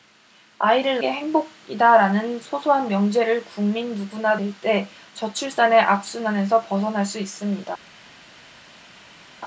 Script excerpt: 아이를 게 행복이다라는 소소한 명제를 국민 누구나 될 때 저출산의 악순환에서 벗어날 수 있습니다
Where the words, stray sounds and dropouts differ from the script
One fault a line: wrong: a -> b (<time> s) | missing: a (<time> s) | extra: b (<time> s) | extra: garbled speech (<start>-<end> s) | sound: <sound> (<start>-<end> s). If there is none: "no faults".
no faults